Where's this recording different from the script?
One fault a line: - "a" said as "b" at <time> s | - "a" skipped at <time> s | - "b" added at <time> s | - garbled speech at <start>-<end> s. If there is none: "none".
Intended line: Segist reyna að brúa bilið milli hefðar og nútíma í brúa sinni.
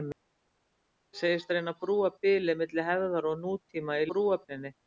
none